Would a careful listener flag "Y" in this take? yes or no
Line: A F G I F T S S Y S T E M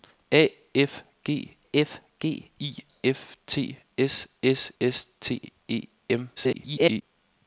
yes